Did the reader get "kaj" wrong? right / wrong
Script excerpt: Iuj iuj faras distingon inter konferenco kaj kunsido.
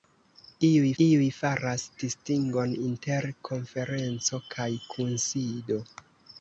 right